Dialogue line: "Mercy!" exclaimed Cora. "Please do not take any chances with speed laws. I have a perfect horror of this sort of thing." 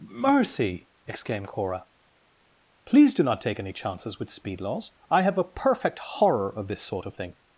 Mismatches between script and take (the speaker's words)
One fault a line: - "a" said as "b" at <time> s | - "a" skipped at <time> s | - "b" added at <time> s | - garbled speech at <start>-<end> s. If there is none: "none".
none